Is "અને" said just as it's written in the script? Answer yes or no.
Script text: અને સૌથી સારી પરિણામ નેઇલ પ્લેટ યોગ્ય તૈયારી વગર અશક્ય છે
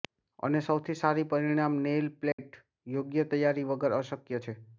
yes